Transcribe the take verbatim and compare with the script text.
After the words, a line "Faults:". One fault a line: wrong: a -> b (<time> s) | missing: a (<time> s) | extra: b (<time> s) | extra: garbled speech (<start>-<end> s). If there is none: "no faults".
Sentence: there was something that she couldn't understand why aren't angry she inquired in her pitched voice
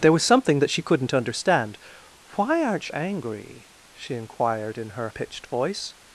there was something that she couldn't understand why aren't angry she inquired in her pitched voice
Faults:
no faults